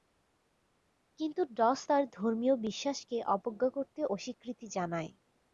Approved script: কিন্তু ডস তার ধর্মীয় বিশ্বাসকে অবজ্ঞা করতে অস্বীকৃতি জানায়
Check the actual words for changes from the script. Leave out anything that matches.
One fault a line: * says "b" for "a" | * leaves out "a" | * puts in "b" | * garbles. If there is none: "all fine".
all fine